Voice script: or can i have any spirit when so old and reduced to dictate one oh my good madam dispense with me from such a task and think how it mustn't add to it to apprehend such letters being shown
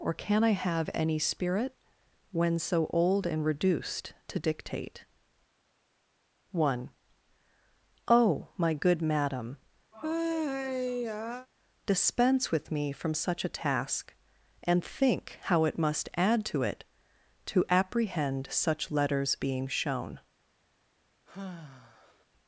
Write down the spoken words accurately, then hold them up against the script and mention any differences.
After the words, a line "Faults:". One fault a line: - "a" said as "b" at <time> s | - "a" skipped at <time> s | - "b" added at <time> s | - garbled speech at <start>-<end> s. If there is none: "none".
or can i have any spirit when so old and reduced to dictate one oh my good madam dispense with me from such a task and think how it must add to it to apprehend such letters being shown
Faults:
- "mustn't" said as "must" at 15.8 s